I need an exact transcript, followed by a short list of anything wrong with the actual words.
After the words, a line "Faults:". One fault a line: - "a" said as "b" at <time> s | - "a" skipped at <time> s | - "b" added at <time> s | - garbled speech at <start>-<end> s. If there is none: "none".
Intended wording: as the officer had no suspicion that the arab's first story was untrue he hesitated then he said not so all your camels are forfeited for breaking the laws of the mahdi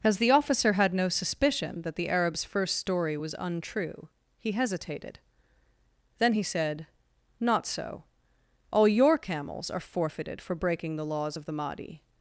as the officer had no suspicion that the arab's first story was untrue he hesitated then he said not so all your camels are forfeited for breaking the laws of the mahdi
Faults:
none